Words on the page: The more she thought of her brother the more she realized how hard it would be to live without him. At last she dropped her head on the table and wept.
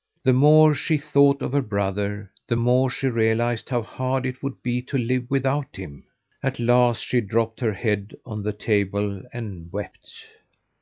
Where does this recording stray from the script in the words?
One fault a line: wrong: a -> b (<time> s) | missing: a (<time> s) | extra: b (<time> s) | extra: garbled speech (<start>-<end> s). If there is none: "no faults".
no faults